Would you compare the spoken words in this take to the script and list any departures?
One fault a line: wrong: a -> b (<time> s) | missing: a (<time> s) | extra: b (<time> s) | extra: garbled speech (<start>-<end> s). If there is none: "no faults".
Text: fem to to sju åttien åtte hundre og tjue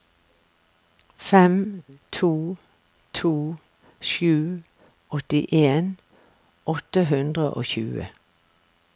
no faults